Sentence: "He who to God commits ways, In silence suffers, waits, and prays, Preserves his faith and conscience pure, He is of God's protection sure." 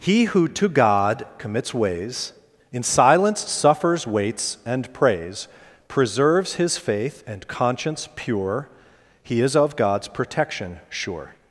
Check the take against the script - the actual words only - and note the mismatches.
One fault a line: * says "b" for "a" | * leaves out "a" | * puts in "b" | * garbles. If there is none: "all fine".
all fine